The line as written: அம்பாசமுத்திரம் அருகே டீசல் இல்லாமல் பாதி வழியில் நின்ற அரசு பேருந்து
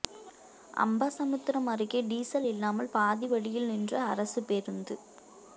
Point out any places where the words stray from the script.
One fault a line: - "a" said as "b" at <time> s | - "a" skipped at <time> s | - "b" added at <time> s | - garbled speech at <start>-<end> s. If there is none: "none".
none